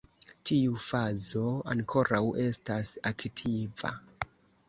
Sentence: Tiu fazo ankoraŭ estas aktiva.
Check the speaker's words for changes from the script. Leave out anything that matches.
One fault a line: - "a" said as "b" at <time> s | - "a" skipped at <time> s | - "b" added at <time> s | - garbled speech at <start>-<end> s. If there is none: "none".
none